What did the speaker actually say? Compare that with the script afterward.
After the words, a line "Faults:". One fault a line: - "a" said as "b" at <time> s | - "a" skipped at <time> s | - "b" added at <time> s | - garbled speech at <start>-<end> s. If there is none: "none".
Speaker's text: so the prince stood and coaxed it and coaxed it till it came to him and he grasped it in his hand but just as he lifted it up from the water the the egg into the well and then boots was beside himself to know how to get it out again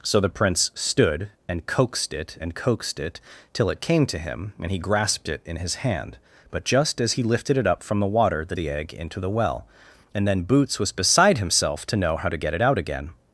so the prince stood and coaxed it and coaxed it till it came to him and he grasped it in his hand but just as he lifted it up from the water the the egg into the well and then boots was beside himself to know how to get it out again
Faults:
none